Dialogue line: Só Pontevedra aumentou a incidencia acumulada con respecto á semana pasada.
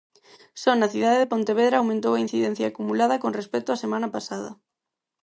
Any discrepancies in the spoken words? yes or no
yes